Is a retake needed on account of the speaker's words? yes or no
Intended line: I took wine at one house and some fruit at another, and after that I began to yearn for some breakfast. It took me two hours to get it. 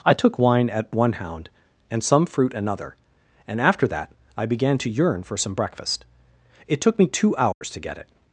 yes